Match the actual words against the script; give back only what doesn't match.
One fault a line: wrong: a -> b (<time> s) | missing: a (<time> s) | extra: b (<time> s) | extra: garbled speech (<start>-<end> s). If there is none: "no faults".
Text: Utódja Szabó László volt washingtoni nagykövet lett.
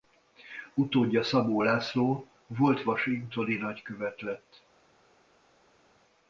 no faults